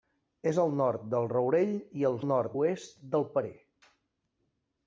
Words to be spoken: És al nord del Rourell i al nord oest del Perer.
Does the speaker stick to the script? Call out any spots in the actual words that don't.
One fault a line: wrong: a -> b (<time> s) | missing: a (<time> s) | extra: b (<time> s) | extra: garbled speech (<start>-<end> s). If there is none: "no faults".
no faults